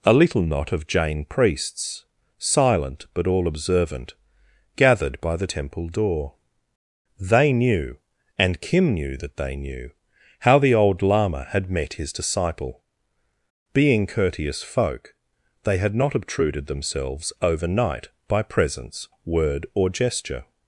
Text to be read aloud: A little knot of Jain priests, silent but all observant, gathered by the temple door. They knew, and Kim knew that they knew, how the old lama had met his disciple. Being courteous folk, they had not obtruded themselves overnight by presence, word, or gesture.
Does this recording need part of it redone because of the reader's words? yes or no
no